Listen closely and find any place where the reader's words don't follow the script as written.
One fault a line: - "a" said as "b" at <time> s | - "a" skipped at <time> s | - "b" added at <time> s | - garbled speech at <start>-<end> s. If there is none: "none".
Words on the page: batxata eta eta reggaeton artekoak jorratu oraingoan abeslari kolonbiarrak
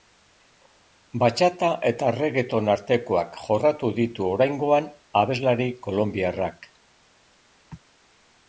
- "eta" skipped at 2.1 s
- "ditu" added at 4.0 s